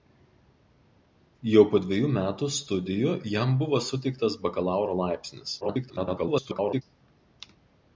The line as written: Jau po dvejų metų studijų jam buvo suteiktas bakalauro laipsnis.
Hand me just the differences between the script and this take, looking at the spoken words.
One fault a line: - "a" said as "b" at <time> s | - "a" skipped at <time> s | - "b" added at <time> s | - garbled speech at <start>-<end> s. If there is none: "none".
- garbled speech at 5.6-6.8 s